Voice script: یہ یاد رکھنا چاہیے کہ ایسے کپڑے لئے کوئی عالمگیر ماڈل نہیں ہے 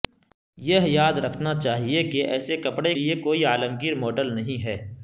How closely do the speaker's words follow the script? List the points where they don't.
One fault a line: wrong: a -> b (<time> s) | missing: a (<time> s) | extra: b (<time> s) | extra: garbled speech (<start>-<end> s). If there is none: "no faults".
no faults